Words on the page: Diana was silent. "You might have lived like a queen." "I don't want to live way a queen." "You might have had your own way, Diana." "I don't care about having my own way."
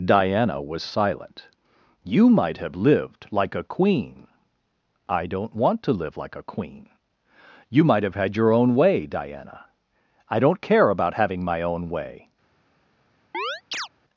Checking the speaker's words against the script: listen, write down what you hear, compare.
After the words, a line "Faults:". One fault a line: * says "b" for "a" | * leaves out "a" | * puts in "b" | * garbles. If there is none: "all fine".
Diana was silent. "You might have lived like a queen." "I don't want to live like a queen." "You might have had your own way, Diana." "I don't care about having my own way."
Faults:
* says "like" for "way"